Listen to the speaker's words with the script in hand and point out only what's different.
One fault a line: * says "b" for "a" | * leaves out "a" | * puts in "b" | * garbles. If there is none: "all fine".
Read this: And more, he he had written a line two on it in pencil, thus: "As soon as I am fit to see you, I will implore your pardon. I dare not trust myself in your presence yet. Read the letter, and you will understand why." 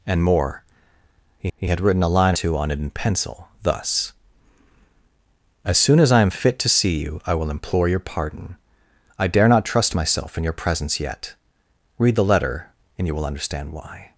all fine